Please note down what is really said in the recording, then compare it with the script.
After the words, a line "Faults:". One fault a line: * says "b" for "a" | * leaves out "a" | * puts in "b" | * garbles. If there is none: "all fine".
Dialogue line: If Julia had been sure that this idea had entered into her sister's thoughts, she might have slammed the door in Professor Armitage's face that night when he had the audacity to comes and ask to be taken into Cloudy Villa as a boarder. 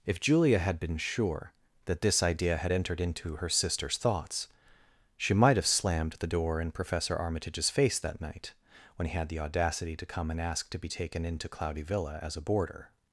If Julia had been sure that this idea had entered into her sister's thoughts, she might have slammed the door in Professor Armitage's face that night when he had the audacity to come and ask to be taken into Cloudy Villa as a boarder.
Faults:
* says "come" for "comes"